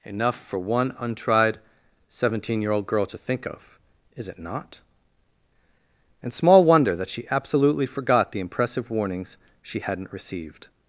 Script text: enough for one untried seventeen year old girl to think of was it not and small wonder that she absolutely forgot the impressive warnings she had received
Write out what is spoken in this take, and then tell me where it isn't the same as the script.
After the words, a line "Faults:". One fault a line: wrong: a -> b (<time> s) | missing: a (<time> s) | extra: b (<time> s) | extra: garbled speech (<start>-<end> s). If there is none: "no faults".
enough for one untried seventeen year old girl to think of is it not and small wonder that she absolutely forgot the impressive warnings she hadn't received
Faults:
wrong: was -> is (4.2 s)
wrong: had -> hadn't (9.8 s)